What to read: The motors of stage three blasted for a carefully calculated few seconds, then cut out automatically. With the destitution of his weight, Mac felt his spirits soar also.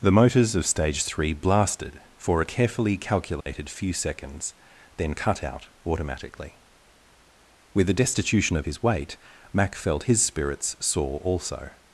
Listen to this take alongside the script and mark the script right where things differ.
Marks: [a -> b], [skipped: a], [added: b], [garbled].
The motors of stage three blasted for a carefully calculated few seconds, then cut out automatically. With the destitution of his weight, Mac felt his spirits soar also.